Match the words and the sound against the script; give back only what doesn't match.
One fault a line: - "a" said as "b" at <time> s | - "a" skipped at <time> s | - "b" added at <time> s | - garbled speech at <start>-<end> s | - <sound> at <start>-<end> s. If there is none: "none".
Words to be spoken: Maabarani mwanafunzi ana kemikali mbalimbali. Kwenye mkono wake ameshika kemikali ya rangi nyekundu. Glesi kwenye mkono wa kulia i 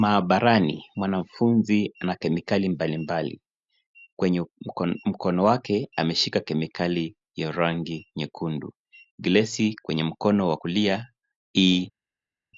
none